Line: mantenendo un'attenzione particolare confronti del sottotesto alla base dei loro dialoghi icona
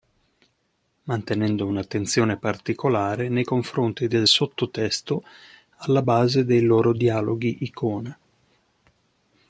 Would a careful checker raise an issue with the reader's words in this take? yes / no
yes